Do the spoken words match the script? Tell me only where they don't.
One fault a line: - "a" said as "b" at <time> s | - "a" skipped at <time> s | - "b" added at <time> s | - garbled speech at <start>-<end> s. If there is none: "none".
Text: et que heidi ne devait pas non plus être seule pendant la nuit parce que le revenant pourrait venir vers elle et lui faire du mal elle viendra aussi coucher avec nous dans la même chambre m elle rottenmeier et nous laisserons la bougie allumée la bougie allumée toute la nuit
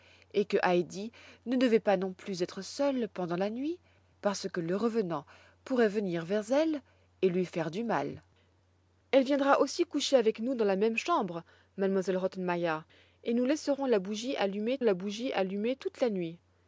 none